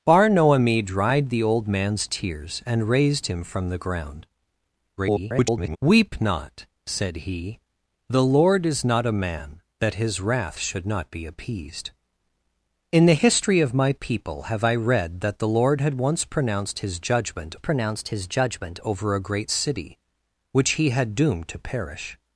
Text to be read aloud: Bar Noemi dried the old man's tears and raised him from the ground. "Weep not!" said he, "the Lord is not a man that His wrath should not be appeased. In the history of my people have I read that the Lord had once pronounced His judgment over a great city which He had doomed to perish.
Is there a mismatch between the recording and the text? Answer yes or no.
yes